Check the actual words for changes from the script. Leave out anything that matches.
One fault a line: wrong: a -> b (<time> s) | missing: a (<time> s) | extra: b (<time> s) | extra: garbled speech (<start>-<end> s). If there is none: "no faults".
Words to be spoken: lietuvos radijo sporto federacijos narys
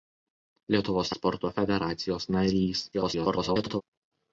missing: radijo (1.1 s)
extra: garbled speech (2.9-3.8 s)